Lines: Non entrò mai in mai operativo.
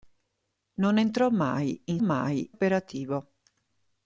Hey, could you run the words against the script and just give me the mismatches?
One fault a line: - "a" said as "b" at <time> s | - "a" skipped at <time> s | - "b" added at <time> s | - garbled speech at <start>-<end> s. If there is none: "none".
none